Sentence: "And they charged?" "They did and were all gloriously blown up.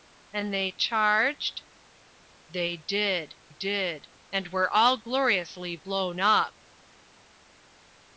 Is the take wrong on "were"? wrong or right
right